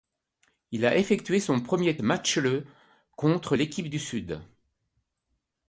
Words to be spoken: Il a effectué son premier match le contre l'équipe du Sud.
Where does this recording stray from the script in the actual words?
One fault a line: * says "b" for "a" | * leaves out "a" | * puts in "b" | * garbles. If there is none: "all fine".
all fine